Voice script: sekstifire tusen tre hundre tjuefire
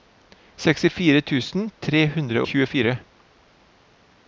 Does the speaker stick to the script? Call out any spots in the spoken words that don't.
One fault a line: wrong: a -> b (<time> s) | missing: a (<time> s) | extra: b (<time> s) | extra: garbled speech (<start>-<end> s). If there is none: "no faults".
no faults